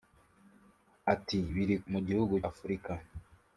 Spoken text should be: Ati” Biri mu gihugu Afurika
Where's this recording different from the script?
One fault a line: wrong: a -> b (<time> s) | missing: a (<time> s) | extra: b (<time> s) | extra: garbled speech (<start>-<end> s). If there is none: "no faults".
no faults